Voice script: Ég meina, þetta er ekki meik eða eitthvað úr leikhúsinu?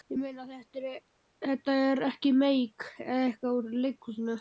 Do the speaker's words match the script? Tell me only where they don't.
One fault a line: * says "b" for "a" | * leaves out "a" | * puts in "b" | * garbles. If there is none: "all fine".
all fine